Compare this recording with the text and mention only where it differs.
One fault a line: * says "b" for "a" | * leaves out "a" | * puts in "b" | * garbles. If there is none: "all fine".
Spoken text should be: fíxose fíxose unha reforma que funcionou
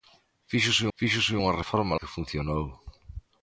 all fine